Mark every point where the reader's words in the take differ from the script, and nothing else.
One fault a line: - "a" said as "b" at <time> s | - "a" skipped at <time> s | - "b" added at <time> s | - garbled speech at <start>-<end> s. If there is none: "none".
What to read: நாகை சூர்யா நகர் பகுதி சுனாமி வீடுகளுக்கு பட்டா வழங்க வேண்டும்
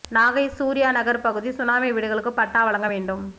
none